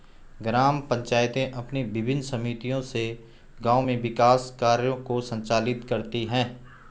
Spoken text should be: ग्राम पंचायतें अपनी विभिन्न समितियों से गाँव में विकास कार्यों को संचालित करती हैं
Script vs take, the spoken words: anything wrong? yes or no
no